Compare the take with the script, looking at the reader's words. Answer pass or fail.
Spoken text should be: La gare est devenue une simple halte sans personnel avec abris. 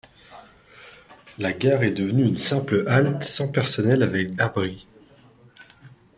pass